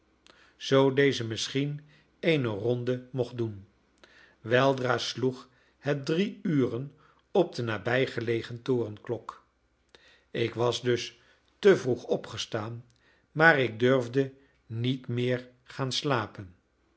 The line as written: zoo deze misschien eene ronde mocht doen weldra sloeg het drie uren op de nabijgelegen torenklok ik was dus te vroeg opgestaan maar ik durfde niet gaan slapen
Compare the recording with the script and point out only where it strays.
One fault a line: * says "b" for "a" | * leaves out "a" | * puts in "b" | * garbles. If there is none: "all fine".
* puts in "meer"